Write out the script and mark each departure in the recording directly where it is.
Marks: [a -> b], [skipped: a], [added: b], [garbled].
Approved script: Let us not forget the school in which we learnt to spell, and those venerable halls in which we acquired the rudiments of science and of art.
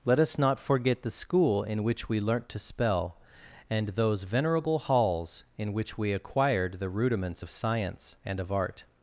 Let us not forget the school in which we learnt to spell, and those venerable halls in which we acquired the rudiments of science and of art.